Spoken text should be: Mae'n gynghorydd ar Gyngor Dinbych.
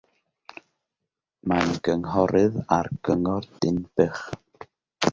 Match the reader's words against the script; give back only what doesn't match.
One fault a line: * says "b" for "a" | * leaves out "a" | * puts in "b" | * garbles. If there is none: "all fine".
all fine